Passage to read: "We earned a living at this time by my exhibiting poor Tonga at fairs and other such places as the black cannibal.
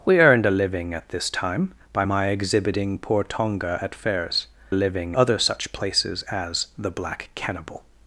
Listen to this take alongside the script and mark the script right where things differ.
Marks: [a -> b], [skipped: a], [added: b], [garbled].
"We earned a living at this time by my exhibiting poor Tonga at fairs [and -> living] other such places as the black cannibal.